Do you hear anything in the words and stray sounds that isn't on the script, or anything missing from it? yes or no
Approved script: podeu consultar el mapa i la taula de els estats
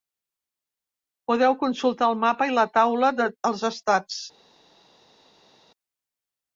no